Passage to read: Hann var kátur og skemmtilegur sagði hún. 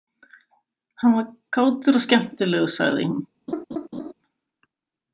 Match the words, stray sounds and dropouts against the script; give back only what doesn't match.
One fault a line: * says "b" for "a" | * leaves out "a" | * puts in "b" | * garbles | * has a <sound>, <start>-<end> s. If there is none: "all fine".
* has a laugh, 3.5-4.1 s